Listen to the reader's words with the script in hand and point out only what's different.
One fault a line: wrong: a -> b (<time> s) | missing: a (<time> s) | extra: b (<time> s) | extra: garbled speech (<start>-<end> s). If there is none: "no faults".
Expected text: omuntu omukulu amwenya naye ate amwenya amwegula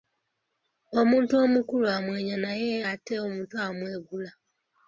wrong: amwenya -> omuto (3.3 s)